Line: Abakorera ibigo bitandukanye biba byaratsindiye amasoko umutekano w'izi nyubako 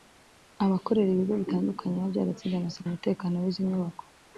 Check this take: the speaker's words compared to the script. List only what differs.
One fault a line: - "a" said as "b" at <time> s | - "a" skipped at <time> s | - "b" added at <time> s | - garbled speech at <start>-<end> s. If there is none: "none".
none